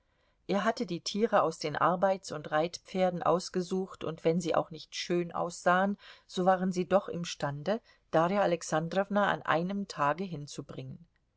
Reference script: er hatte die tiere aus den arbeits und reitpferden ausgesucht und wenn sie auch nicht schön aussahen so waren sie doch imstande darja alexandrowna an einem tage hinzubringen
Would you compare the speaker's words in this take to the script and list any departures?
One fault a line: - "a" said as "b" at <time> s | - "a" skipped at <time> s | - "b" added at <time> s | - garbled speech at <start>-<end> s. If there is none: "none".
none